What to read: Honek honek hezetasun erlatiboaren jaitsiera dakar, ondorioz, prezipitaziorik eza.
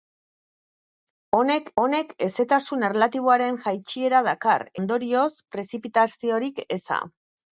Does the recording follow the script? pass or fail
pass